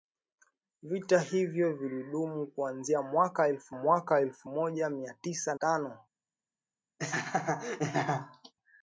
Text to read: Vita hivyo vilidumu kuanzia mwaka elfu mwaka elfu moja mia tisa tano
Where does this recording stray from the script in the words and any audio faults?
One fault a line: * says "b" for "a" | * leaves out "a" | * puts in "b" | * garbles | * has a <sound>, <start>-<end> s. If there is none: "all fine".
* has a laugh, 7.0-8.5 s